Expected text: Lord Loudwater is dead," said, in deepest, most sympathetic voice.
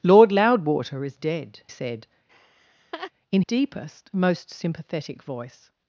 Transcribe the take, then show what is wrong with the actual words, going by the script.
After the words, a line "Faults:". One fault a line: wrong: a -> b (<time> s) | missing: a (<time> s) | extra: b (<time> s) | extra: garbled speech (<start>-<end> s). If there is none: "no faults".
Lord Loudwater is dead," said, in deepest, most sympathetic voice.
Faults:
no faults